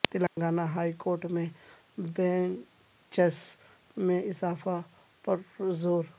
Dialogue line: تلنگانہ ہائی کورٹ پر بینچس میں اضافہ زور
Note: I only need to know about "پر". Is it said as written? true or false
false